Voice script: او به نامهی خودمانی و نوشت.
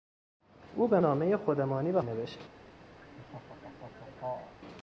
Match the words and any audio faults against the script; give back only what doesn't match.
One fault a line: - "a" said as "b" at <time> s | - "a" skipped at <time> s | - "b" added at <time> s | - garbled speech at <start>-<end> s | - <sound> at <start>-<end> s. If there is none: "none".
- laugh at 3.0-4.6 s